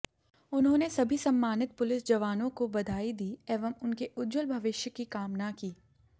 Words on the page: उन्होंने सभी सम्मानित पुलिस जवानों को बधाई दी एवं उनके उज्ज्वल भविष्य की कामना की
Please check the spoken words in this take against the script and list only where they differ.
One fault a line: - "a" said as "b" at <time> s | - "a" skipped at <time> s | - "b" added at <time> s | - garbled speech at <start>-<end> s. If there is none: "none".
none